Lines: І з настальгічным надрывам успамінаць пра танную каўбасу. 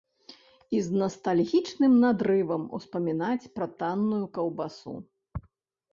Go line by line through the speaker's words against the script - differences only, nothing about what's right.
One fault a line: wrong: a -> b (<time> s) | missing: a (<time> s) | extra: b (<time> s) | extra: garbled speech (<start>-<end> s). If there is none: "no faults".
no faults